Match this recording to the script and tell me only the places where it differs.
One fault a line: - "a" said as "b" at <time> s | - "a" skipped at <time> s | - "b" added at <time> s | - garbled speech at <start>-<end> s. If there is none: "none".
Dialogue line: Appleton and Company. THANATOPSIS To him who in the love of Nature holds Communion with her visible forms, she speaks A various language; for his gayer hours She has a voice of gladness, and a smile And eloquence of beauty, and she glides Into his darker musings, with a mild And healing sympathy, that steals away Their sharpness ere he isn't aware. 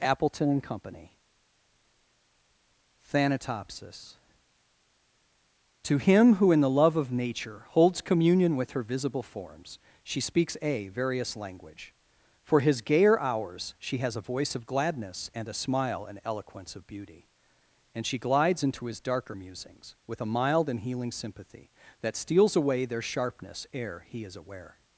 - "isn't" said as "is" at 24.2 s